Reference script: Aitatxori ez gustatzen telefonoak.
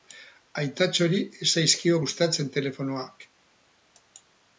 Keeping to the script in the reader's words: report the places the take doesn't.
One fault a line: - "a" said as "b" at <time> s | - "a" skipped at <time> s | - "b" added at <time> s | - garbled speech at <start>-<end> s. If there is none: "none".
- "zaizkio" added at 1.6 s